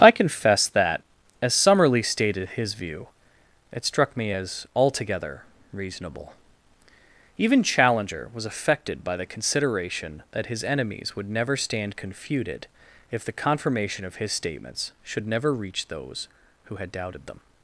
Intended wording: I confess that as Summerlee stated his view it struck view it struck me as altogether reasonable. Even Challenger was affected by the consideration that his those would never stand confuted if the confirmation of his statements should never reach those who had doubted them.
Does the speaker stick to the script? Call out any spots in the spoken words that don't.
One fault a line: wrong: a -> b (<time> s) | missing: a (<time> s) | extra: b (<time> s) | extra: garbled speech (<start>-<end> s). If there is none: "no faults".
missing: view it struck (4.2 s)
wrong: those -> enemies (10.6 s)